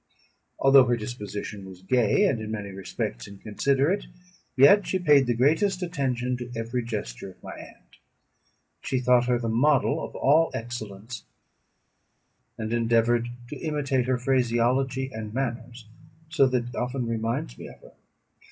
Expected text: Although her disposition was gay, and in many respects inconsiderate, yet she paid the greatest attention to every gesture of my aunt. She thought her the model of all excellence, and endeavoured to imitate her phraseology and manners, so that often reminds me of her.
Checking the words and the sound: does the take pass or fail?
pass